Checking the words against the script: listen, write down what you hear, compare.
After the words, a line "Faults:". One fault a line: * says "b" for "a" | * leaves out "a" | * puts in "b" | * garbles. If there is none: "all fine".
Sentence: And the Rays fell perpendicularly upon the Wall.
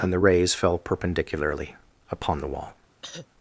And the Rays fell perpendicularly upon the Wall.
Faults:
all fine